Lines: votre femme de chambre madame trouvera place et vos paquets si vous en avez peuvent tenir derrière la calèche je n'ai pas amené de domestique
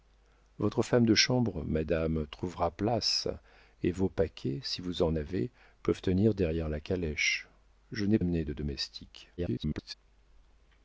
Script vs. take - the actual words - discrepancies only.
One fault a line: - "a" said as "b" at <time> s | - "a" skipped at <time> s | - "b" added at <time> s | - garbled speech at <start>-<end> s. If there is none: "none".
- "pas" skipped at 8.2 s
- garbled speech at 9.4-9.9 s